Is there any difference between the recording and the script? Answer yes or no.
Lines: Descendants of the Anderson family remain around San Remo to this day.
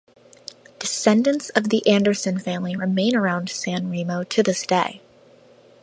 no